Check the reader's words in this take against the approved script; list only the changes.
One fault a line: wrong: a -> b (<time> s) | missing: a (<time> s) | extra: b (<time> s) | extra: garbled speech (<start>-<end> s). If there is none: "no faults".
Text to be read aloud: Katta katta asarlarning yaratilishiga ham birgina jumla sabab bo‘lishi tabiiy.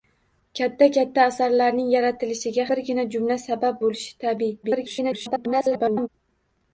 missing: ham (2.6 s)
extra: garbled speech (4.6-6.1 s)